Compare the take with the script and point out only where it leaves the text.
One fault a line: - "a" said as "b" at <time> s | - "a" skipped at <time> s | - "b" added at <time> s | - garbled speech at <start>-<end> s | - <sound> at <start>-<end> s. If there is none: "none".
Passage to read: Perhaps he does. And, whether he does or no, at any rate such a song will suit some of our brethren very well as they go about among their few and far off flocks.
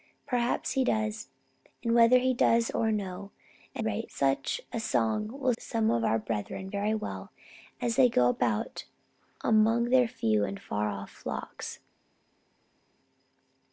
- "any" skipped at 3.8 s
- "suit" skipped at 5.5 s